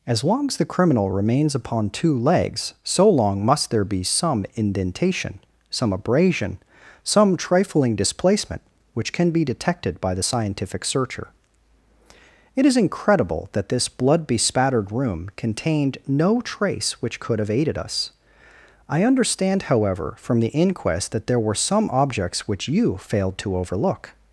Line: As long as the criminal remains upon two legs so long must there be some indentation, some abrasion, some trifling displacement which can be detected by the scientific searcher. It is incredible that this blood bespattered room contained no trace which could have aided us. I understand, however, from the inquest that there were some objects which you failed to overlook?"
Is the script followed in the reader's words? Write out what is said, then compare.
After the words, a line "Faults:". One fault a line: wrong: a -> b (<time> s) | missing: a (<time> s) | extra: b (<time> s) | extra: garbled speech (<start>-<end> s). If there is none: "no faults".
As long as the criminal remains upon two legs so long must there be some indentation, some abrasion, some trifling displacement which can be detected by the scientific searcher. It is incredible that this blood bespattered room contained no trace which could have aided us. I understand, however, from the inquest that there were some objects which you failed to overlook?"
Faults:
no faults